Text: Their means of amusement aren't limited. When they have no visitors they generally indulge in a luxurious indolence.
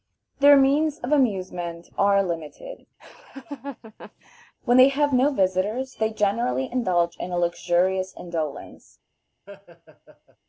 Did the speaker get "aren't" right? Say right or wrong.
wrong